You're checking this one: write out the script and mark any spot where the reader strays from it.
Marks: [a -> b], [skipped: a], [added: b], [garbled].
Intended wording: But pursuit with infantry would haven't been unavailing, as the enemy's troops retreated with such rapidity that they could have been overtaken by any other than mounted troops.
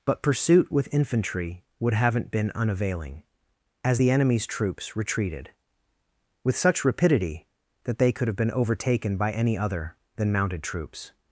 But pursuit with infantry would haven't been unavailing, as the enemy's troops retreated with such rapidity that they could have been overtaken by any other than mounted troops.